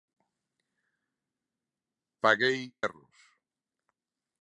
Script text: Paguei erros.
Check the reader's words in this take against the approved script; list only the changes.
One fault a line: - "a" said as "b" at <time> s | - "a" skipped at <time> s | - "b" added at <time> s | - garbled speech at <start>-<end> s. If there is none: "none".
none